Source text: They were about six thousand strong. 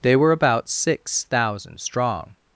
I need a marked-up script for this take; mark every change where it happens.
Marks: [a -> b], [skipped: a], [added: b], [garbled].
They were about six thousand strong.